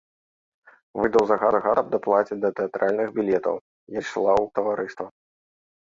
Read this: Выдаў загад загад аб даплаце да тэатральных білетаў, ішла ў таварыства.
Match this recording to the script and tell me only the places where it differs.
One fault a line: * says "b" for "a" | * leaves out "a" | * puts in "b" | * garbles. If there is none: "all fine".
all fine